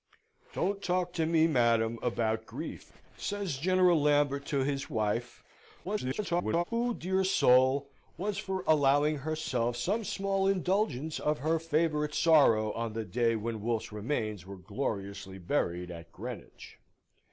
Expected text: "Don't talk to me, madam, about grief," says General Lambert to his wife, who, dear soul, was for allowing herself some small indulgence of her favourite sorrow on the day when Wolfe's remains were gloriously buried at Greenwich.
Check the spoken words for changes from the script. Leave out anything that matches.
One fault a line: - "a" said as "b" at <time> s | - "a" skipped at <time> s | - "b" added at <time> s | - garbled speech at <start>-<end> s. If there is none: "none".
- garbled speech at 5.8-6.6 s